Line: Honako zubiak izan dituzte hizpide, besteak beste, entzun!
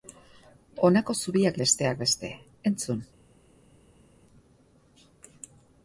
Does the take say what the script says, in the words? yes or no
no